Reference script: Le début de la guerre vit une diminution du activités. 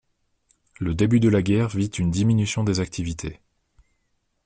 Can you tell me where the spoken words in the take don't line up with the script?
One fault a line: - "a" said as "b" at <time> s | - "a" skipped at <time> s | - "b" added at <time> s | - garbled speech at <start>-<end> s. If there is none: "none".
- "du" said as "des" at 2.6 s